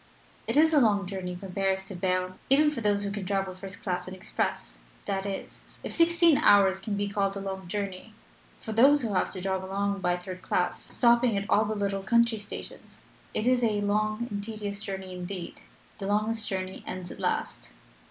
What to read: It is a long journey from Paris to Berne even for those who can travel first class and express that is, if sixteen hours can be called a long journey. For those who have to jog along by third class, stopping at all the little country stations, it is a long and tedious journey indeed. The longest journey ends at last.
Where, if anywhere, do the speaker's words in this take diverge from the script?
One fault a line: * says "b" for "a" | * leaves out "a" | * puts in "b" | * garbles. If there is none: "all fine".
all fine